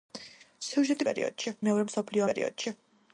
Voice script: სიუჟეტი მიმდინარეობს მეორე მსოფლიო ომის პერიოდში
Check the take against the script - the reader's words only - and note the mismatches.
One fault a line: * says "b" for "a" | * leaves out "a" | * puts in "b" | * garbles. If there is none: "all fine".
* says "პერიოდში" for "მიმდინარეობს"
* leaves out "ომის"